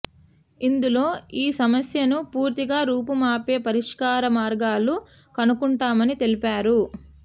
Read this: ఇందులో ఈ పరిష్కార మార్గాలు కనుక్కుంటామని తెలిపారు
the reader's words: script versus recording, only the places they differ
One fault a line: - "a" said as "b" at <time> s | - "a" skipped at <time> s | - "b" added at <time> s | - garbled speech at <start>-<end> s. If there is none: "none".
- "సమస్యను పూర్తిగా రూపుమాపే" added at 1.6 s